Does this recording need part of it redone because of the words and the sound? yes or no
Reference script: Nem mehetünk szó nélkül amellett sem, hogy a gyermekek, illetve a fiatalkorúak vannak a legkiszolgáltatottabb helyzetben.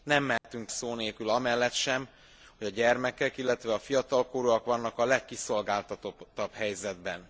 yes